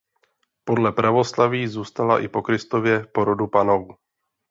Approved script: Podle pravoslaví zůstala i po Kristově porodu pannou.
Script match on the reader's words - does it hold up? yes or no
yes